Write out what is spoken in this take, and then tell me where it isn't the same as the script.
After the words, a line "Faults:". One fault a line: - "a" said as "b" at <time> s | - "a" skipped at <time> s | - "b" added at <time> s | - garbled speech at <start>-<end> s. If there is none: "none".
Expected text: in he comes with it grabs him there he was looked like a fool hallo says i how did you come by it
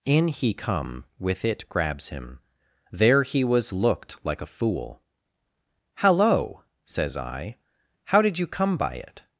in he come with it grabs him there he was looked like a fool hallo says i how did you come by it
Faults:
- "comes" said as "come" at 0.5 s